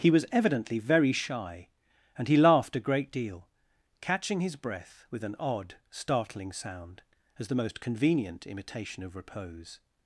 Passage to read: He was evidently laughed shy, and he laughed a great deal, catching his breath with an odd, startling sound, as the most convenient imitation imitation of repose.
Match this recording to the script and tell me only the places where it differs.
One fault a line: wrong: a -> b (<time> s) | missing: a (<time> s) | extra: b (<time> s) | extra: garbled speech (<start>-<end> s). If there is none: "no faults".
wrong: laughed -> very (0.8 s)
missing: imitation (9.0 s)